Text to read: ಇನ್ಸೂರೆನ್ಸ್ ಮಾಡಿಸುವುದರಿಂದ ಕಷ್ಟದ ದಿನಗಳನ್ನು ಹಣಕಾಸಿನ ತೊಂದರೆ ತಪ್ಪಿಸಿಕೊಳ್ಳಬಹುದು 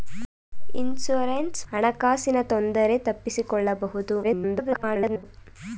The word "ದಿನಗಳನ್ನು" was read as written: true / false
false